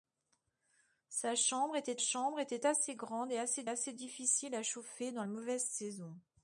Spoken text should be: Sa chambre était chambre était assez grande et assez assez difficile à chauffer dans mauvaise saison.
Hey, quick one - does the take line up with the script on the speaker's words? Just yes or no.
yes